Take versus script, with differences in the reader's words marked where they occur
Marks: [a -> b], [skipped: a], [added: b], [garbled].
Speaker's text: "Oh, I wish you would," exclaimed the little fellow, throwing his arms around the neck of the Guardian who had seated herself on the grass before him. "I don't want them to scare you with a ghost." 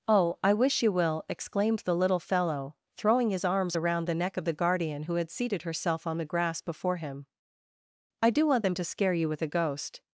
"Oh, I wish you [would," -> will] exclaimed the little fellow, throwing his arms around the neck of the Guardian who had seated herself on the grass before him. "I [don't -> do] want them to scare you with a ghost."